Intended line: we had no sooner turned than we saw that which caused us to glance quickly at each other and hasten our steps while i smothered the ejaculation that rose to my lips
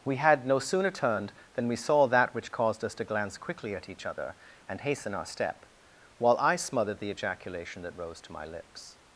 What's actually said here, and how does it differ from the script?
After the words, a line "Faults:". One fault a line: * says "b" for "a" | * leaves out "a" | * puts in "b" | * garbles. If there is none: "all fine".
we had no sooner turned than we saw that which caused us to glance quickly at each other and hasten our step while i smothered the ejaculation that rose to my lips
Faults:
* says "step" for "steps"